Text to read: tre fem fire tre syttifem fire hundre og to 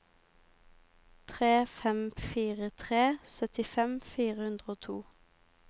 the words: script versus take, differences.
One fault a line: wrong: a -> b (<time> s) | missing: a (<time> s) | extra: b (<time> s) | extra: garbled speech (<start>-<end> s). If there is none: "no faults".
no faults